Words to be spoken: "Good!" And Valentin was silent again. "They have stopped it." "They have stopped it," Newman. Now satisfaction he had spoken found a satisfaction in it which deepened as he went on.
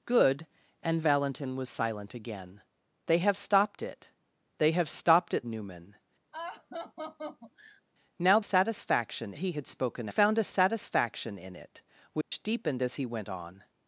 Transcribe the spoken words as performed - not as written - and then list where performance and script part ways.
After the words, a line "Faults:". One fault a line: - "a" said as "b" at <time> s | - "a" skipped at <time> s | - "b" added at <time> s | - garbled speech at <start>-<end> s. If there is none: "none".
"Good!" And Valentin was silent again. "They have stopped it." "They have stopped it," Newman. Now satisfaction he had spoken found a satisfaction in it which deepened as he went on.
Faults:
none